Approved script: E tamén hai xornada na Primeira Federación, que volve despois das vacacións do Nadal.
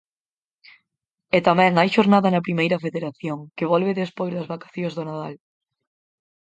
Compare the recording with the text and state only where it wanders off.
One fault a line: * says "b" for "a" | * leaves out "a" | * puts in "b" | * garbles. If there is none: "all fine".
all fine